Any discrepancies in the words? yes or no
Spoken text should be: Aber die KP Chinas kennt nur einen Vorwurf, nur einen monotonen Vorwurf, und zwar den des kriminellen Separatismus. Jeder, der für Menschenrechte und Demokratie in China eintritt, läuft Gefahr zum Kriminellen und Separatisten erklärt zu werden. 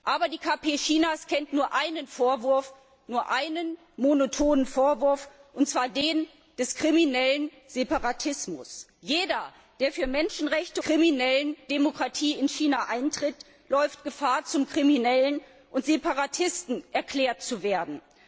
yes